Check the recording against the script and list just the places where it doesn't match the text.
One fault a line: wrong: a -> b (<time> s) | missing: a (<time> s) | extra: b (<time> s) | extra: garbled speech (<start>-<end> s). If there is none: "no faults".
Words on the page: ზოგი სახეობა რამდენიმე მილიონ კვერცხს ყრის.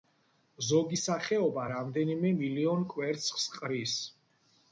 no faults